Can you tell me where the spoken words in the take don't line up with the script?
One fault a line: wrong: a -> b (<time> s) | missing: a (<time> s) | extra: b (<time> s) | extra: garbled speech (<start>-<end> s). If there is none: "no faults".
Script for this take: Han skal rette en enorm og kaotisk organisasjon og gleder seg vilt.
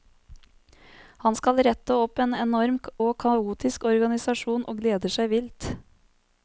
extra: opp (2.0 s)